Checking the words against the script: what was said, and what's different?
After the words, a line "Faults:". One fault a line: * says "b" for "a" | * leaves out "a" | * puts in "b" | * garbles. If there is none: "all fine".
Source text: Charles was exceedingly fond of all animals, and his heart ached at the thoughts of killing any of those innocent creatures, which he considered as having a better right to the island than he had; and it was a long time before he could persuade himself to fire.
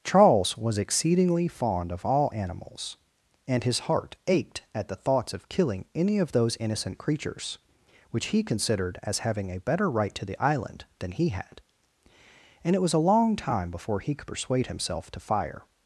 Charles was exceedingly fond of all animals, and his heart ached at the thoughts of killing any of those innocent creatures, which he considered as having a better right to the island than he had; and it was a long time before he could persuade himself to fire.
Faults:
all fine